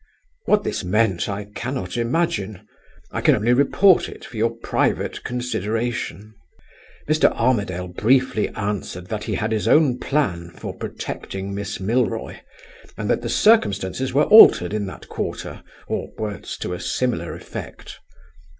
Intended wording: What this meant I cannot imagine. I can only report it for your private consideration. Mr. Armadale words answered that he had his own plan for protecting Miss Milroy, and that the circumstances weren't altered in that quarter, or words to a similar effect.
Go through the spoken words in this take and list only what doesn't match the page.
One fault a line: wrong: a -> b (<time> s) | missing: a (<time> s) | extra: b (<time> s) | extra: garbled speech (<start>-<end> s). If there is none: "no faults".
wrong: words -> briefly (7.9 s)
wrong: weren't -> were (14.1 s)